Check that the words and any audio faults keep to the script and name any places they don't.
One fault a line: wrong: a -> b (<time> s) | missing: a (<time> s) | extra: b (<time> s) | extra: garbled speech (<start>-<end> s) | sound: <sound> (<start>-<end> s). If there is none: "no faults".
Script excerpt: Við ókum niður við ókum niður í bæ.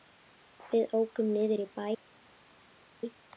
missing: við ókum niður (1.6 s)